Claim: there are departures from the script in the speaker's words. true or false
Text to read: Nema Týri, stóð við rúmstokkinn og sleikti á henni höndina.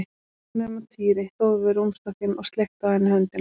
false